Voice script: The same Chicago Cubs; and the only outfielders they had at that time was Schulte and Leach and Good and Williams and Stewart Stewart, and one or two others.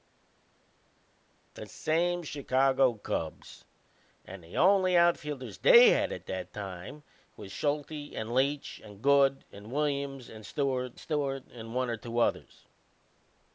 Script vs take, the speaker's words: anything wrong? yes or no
no